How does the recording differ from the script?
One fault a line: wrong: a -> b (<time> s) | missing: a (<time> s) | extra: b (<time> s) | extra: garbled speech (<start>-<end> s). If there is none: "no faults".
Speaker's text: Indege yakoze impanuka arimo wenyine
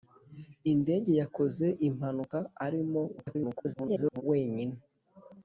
extra: garbled speech (3.2-4.2 s)